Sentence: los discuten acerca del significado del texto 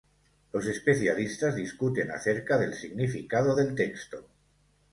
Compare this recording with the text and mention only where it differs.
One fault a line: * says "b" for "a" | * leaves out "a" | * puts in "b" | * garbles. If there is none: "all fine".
* puts in "especialistas"